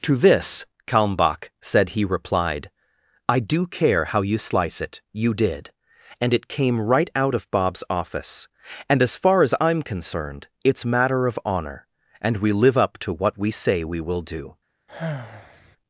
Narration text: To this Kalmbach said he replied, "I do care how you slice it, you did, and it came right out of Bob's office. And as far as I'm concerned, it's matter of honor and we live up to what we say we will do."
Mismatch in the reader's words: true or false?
false